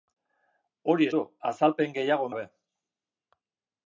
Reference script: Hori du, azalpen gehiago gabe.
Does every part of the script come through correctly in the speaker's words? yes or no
yes